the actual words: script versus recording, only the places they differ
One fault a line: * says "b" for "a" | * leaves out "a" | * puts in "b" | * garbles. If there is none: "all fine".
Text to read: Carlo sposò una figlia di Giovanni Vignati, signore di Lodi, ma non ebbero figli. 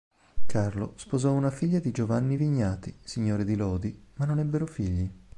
all fine